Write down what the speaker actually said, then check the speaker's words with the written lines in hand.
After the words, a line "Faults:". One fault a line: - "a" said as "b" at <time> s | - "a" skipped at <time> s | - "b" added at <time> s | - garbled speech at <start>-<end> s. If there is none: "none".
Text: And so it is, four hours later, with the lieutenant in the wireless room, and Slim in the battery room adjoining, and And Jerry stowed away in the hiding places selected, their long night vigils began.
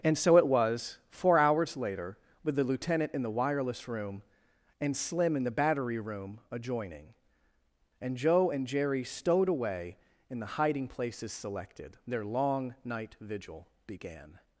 And so it was, four hours later, with the lieutenant in the wireless room, and Slim in the battery room adjoining, and Joe and Jerry stowed away in the hiding places selected, their long night vigil began.
Faults:
- "is" said as "was" at 0.5 s
- "Joe" added at 8.2 s
- "vigils" said as "vigil" at 13.2 s